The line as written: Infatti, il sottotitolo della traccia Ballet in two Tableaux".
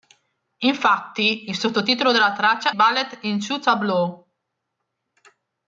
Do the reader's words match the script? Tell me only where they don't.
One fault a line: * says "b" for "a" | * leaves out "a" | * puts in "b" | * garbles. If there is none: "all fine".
all fine